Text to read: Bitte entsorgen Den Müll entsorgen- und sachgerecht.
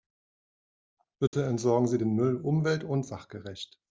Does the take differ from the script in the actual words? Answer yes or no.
yes